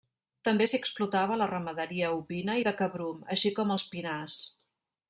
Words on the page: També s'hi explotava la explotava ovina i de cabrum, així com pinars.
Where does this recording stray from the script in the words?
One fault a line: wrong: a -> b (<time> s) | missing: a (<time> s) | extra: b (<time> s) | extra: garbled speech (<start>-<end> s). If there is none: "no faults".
wrong: explotava -> ramaderia (1.5 s)
extra: els (3.8 s)